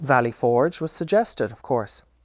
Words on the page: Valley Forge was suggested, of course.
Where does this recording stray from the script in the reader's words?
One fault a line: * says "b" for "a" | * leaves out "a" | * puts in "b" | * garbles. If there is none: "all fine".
all fine